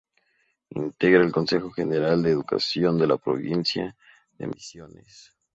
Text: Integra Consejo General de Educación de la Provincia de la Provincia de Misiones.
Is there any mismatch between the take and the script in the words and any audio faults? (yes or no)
yes